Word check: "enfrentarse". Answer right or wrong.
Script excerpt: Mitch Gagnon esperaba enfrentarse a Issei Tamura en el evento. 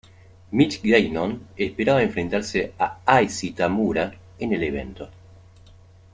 right